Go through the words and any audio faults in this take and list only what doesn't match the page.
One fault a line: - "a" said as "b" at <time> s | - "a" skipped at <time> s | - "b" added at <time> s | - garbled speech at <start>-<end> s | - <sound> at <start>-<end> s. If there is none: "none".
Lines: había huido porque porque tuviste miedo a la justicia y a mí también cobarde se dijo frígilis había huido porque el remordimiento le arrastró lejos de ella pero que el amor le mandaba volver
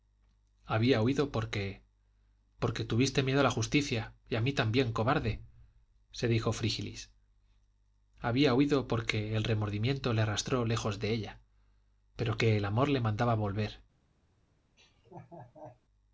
- laugh at 14.8-15.8 s